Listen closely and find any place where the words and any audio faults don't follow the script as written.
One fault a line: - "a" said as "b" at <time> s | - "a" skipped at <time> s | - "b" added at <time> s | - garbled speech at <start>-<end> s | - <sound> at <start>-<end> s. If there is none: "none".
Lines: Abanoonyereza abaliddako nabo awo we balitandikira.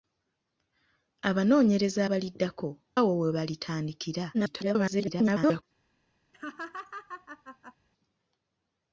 - "nabo" skipped at 2.7 s
- garbled speech at 4.3-5.6 s
- laugh at 6.3-7.8 s